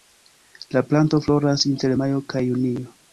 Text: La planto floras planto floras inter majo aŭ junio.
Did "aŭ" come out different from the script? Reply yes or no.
yes